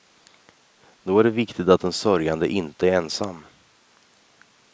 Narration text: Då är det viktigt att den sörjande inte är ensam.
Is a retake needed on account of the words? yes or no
no